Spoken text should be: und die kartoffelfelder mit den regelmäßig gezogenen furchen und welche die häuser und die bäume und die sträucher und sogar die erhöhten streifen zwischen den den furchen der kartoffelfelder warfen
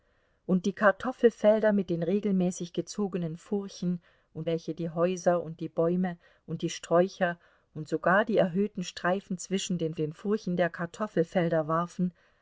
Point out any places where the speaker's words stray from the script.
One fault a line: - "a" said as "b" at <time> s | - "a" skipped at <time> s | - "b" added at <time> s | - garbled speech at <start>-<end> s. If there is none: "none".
none